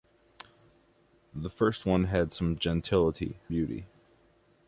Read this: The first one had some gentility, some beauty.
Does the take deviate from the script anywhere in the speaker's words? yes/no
yes